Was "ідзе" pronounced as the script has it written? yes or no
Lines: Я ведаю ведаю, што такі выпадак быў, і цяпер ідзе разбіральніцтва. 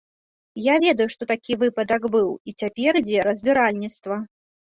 yes